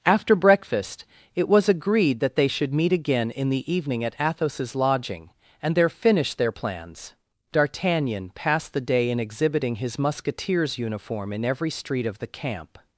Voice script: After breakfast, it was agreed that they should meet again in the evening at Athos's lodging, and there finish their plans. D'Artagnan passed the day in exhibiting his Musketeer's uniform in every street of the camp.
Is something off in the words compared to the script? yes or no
no